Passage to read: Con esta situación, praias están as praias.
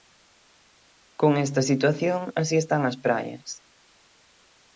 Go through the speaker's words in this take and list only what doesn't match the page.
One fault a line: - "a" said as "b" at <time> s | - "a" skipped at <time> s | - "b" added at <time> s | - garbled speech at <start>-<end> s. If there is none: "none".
- "praias" said as "así" at 2.4 s